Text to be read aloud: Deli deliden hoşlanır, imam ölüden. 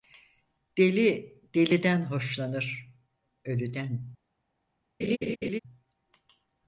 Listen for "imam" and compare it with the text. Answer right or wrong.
wrong